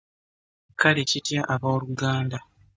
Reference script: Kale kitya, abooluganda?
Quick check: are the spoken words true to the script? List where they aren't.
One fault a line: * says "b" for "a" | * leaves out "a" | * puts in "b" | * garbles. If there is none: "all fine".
all fine